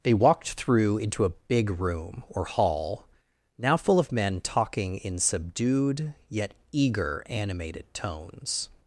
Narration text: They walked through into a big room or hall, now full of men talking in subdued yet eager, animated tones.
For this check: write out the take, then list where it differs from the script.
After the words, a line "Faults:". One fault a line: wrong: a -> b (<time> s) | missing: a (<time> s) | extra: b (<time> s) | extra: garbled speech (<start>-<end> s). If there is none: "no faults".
They walked through into a big room or hall, now full of men talking in subdued yet eager, animated tones.
Faults:
no faults